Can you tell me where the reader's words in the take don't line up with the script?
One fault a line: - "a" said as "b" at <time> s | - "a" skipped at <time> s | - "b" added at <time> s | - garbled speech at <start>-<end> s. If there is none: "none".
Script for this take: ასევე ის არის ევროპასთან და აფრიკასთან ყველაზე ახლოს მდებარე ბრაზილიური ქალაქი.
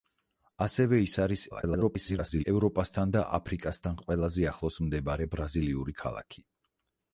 - garbled speech at 1.5-2.4 s